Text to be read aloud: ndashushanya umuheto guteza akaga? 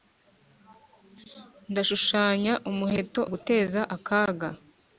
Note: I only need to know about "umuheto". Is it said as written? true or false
true